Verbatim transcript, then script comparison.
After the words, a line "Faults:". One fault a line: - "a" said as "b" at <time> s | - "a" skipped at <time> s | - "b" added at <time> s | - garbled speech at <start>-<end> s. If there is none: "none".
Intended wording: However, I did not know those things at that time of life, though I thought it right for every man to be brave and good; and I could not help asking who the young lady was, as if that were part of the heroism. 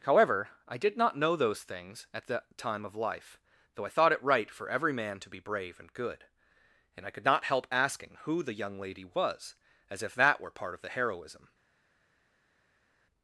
However, I did not know those things at that time of life, though I thought it right for every man to be brave and good; and I could not help asking who the young lady was, as if that were part of the heroism.
Faults:
none